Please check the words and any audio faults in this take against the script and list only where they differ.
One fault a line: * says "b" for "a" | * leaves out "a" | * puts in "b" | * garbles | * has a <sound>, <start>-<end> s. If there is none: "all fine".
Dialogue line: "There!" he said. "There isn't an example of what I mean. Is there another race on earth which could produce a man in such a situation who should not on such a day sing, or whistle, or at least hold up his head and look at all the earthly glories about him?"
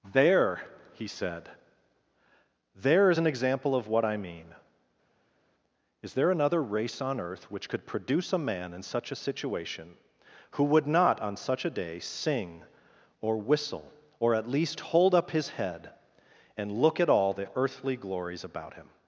* says "is" for "isn't"
* says "would" for "should"